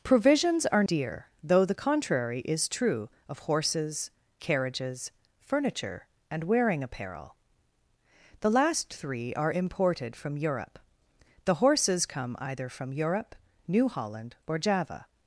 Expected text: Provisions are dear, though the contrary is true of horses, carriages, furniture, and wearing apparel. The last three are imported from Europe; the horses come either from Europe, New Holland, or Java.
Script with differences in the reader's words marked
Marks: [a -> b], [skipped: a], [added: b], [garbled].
Provisions are dear, though the contrary is true of horses, carriages, furniture, and wearing apparel. The last three are imported from Europe; the horses come either from Europe, New Holland, or Java.